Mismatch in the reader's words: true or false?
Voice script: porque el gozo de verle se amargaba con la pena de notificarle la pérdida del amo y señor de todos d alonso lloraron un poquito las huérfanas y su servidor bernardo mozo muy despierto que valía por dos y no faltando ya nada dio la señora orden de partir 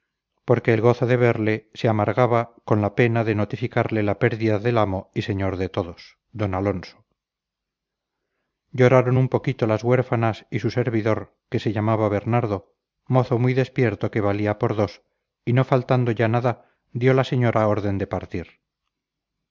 true